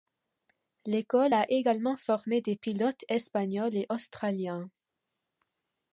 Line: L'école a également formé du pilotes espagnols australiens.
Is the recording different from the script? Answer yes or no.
yes